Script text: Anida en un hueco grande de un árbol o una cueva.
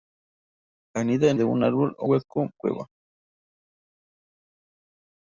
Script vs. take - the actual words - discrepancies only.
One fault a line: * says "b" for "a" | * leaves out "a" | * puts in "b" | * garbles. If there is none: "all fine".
* leaves out "un hueco grande"
* says "hueco" for "una"